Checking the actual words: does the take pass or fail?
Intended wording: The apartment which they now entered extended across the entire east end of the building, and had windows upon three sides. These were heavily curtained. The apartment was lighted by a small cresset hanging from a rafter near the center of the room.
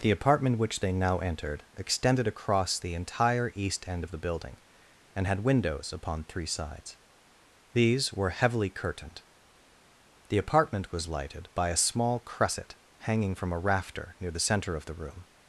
pass